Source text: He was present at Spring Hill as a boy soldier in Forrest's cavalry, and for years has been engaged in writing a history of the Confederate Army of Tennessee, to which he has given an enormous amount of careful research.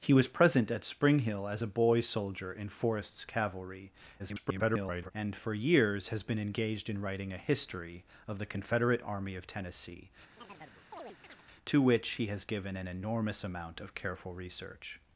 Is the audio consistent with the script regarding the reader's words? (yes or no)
no